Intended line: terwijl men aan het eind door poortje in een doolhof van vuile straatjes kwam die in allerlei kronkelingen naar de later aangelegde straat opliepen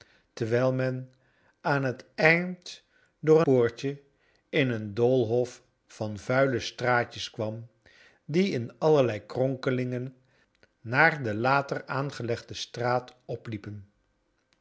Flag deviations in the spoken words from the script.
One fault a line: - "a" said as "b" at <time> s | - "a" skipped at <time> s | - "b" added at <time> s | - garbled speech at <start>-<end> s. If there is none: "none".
none